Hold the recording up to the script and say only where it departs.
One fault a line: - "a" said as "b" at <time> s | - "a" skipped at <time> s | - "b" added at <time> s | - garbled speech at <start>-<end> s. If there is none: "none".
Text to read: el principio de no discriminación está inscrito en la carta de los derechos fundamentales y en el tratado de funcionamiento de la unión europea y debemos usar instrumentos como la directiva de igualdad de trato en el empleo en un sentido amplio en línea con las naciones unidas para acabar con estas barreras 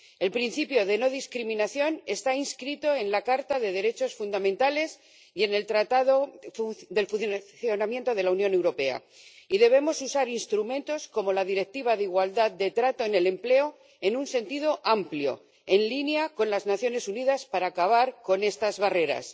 none